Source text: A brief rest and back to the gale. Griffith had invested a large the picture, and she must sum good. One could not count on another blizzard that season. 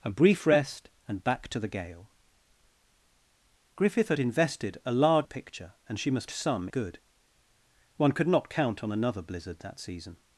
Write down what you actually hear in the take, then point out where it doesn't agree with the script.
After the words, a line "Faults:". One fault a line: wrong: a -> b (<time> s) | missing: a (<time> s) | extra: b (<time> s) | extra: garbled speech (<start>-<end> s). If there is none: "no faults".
A brief rest and back to the gale. Griffith had invested a large the picture, and she must sum good. One could not count on another blizzard that season.
Faults:
no faults